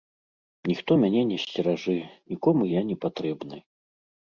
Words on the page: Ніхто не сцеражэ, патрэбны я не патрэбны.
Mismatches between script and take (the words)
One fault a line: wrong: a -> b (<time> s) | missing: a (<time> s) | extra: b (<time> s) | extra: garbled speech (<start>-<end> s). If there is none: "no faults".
extra: мяне (1.0 s)
wrong: патрэбны -> нікому (2.4 s)